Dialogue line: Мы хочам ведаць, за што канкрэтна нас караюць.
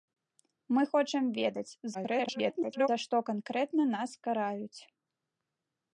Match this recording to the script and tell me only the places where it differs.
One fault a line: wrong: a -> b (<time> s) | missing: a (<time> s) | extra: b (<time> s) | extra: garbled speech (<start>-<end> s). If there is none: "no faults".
extra: garbled speech (1.9-2.9 s)